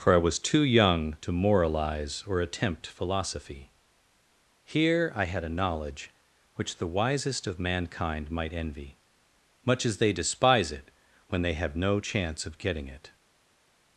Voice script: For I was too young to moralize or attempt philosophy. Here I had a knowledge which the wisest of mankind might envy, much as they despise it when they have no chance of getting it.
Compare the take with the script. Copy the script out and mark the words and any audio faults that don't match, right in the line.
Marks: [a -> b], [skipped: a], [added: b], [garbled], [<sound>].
For I was too young to moralize or attempt philosophy. Here I had a knowledge which the wisest of mankind might envy, much as they despise it when they have no chance of getting it.